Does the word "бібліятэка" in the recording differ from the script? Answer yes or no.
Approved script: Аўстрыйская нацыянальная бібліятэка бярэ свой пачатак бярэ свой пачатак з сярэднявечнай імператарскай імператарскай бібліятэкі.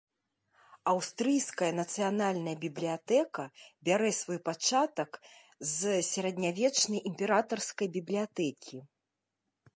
no